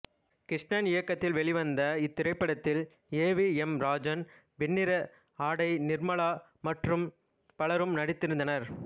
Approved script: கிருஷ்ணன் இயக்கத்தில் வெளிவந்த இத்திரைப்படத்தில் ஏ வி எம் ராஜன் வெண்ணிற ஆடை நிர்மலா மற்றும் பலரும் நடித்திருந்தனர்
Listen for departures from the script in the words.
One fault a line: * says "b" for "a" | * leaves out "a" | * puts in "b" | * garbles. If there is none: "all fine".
all fine